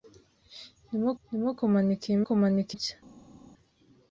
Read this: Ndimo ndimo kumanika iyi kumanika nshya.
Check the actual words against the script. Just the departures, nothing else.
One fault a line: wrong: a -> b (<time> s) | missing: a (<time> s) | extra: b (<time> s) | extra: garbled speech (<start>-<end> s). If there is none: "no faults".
no faults